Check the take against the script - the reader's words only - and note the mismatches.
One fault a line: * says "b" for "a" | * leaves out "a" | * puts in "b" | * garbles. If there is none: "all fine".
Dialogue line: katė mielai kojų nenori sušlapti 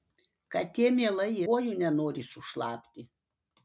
all fine